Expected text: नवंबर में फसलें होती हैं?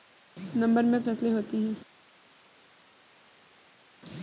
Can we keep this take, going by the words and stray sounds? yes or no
yes